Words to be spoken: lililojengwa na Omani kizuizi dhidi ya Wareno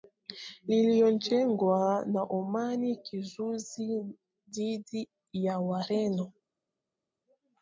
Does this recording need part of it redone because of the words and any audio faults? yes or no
no